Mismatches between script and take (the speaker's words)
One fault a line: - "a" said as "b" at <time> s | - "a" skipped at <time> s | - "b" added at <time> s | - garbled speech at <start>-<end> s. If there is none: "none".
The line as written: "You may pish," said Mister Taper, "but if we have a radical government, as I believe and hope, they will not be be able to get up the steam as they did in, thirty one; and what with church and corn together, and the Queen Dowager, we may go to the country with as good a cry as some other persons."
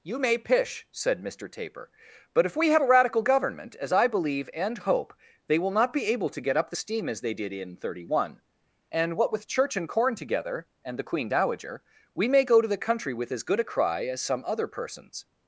- "be" skipped at 6.0 s